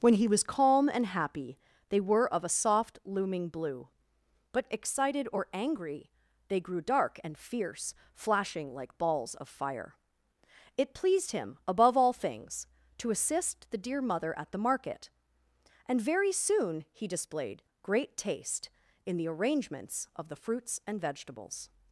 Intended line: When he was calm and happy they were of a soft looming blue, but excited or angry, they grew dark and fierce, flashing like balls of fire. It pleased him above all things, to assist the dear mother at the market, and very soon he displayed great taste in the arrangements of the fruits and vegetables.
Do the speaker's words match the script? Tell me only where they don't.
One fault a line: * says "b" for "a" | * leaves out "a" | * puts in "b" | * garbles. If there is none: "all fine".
all fine